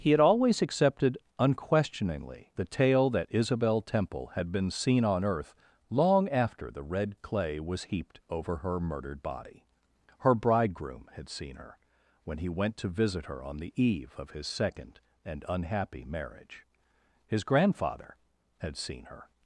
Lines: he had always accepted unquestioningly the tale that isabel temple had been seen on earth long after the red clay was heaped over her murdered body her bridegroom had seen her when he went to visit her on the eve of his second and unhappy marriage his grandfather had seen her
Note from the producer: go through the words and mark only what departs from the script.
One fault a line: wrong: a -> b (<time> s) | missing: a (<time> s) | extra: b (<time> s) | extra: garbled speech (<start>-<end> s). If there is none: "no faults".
no faults